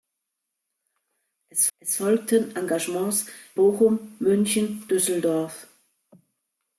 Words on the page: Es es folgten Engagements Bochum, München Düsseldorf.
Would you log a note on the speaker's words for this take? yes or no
no